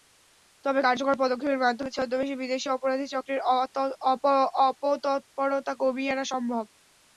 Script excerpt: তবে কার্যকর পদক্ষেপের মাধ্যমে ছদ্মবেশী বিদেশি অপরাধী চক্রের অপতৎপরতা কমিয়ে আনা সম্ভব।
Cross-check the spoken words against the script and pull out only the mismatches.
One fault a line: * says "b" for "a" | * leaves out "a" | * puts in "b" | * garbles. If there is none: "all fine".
all fine